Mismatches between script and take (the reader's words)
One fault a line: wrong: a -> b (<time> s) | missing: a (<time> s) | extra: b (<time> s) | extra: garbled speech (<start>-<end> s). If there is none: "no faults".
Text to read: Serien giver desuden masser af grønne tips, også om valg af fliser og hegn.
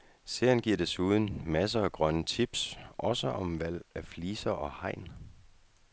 no faults